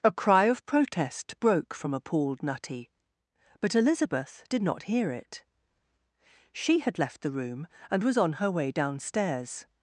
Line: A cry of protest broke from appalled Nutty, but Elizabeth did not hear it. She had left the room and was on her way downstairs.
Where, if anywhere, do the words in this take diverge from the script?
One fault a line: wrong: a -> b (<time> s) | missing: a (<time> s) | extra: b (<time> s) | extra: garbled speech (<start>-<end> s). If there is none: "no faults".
no faults